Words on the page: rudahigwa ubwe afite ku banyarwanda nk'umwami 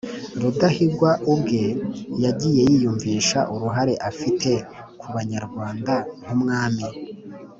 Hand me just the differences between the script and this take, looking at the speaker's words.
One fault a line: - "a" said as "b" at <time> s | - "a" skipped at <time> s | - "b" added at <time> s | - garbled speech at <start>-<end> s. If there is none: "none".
- "yagiye yiyumvisha uruhare" added at 2.2 s